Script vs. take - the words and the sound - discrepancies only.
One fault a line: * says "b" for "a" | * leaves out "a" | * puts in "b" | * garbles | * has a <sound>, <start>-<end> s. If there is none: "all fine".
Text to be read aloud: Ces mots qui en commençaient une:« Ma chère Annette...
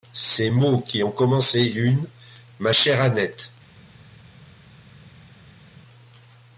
all fine